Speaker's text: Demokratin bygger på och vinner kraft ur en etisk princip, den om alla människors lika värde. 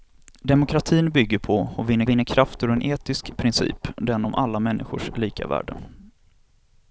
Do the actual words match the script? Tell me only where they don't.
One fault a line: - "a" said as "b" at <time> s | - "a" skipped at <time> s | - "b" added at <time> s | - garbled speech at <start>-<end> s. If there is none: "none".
- "vinner" added at 2.1 s